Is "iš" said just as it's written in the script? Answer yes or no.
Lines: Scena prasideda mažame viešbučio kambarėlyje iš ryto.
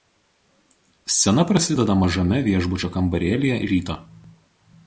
no